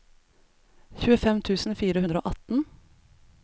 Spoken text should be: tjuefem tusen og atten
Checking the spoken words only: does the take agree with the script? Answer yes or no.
no